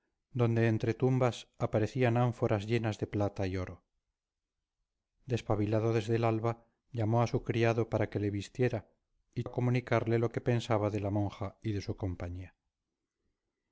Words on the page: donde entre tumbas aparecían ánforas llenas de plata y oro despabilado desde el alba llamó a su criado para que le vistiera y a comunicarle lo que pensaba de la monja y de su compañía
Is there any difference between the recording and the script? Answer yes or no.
no